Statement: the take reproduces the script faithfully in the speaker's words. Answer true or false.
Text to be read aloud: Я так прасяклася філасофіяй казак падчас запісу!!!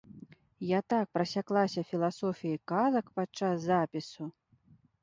true